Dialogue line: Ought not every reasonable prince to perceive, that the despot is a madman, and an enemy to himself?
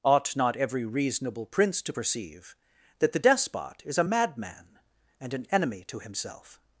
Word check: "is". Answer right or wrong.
right